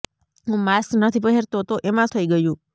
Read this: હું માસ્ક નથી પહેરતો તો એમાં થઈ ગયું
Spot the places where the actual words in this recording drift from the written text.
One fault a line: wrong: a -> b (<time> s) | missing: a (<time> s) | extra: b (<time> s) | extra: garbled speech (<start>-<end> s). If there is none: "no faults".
no faults